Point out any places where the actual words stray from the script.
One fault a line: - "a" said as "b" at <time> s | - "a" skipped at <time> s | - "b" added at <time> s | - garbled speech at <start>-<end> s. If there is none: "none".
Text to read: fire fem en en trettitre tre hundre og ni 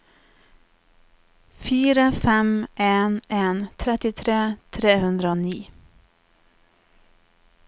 none